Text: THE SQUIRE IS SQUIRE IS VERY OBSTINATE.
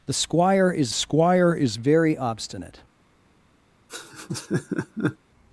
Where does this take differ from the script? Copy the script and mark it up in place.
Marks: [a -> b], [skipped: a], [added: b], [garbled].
THE SQUIRE IS SQUIRE IS VERY OBSTINATE.